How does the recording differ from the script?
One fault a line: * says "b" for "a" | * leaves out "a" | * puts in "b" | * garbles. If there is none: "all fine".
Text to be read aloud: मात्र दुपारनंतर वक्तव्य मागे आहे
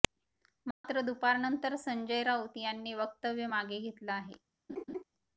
* puts in "संजय राऊत यांनी"
* puts in "घेतलं"